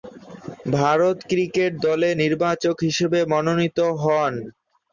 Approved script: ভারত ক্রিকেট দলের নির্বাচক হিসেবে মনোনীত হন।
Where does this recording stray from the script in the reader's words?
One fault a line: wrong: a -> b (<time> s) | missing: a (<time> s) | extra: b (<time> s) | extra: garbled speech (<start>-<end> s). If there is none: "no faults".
no faults